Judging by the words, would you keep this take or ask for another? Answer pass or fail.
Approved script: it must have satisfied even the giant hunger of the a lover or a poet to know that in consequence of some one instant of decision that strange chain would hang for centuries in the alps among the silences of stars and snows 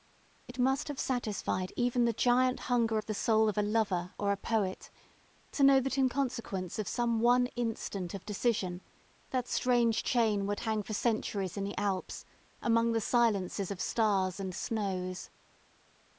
fail